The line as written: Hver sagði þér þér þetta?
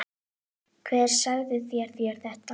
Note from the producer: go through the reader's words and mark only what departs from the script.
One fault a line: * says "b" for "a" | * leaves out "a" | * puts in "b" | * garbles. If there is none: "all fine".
all fine